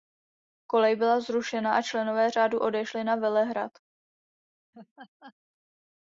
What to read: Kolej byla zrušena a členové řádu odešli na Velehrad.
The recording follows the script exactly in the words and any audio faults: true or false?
false